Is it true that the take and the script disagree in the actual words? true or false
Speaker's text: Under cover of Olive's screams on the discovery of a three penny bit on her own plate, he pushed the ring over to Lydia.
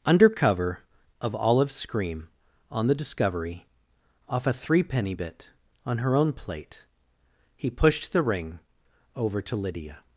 true